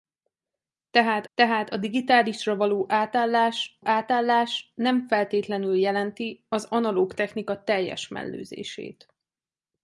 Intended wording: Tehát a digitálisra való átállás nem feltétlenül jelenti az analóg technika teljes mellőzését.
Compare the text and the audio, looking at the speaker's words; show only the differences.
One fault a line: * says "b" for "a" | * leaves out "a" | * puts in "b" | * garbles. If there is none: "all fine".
* puts in "tehát"
* puts in "átállás"